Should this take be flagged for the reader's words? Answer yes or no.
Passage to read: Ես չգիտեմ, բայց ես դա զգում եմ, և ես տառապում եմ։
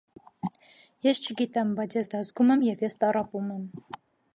no